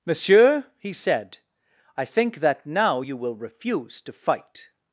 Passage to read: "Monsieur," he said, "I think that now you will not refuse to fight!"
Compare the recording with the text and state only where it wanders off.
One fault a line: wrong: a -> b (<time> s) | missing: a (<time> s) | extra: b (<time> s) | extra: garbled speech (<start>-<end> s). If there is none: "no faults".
missing: not (3.3 s)